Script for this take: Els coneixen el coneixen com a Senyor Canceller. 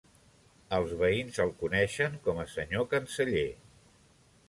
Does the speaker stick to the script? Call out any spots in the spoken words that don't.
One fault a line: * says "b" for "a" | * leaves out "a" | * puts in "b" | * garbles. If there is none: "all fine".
* says "veïns" for "coneixen"